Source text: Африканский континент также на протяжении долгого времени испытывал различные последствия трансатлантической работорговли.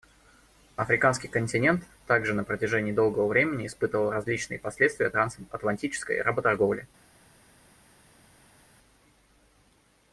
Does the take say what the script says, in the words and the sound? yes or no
yes